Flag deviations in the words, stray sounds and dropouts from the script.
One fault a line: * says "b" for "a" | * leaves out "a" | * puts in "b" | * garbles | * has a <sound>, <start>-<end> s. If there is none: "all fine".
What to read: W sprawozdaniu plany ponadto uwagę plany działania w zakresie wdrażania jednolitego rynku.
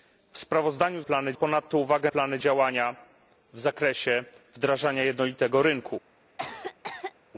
* has a cough, 6.4-7.1 s